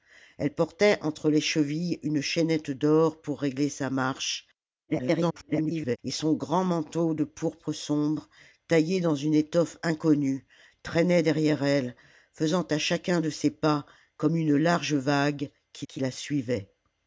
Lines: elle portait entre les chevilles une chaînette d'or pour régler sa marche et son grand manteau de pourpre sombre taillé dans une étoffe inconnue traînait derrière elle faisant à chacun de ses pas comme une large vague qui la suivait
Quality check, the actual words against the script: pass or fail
fail